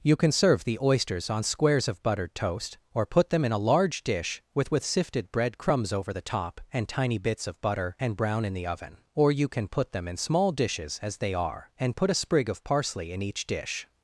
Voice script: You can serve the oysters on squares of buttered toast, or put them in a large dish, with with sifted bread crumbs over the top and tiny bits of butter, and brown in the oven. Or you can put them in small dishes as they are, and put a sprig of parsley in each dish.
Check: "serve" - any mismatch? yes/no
no